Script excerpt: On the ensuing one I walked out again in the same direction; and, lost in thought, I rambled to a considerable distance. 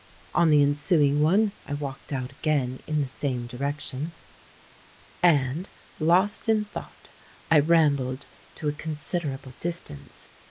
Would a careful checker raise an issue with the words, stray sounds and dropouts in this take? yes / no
no